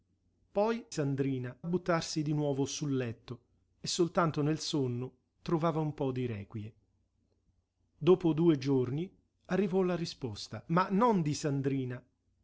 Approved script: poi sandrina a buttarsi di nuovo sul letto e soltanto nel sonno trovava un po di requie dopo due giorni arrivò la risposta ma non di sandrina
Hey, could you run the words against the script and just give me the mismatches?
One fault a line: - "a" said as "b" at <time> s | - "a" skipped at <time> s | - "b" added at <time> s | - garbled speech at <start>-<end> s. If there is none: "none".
none